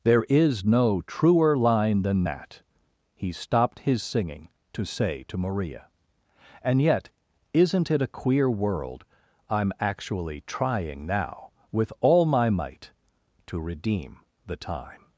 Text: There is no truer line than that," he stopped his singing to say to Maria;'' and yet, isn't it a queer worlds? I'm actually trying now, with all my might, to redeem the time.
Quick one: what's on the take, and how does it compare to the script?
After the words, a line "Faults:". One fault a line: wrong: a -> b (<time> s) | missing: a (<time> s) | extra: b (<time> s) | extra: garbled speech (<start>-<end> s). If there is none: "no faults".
There is no truer line than that," he stopped his singing to say to Maria;'' and yet, isn't it a queer world? I'm actually trying now, with all my might, to redeem the time.
Faults:
wrong: worlds -> world (8.5 s)